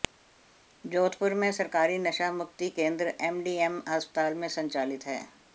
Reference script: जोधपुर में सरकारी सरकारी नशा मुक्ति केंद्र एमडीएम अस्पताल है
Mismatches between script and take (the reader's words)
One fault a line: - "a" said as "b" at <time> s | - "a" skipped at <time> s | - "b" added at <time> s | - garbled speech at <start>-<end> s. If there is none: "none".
- "सरकारी" skipped at 2.0 s
- "में संचालित" added at 4.3 s